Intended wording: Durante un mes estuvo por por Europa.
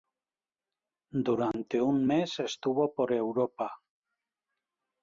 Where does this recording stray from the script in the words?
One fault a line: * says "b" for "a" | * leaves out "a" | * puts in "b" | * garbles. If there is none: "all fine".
* leaves out "por"